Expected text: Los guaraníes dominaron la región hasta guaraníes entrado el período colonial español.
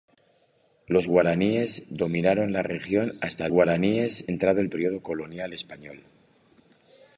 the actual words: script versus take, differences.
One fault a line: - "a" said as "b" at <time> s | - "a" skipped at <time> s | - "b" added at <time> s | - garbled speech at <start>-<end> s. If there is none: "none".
none